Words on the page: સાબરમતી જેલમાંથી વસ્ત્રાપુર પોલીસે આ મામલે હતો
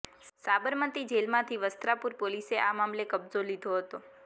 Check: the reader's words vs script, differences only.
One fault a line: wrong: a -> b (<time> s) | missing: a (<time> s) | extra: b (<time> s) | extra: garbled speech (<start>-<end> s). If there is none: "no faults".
extra: કબજો લીધો (3.1 s)